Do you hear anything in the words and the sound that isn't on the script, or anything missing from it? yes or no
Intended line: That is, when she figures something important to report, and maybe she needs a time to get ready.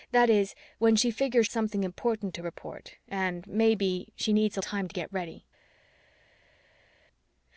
no